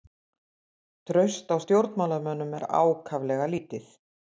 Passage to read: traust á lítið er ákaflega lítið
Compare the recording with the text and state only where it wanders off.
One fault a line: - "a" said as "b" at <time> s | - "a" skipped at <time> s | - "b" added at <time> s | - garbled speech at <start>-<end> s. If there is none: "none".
- "lítið" said as "stjórnmálamönnum" at 1.6 s